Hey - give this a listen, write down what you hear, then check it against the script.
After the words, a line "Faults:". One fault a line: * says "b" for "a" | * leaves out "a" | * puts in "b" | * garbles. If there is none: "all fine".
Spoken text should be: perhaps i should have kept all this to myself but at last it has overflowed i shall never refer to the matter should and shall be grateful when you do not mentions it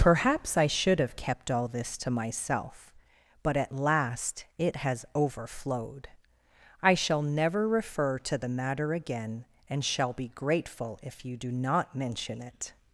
perhaps i should have kept all this to myself but at last it has overflowed i shall never refer to the matter again and shall be grateful if you do not mention it
Faults:
* says "again" for "should"
* says "if" for "when"
* says "mention" for "mentions"